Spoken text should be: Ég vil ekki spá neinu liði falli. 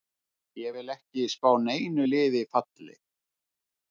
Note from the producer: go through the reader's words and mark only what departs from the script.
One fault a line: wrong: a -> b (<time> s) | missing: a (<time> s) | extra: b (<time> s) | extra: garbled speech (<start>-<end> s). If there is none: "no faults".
no faults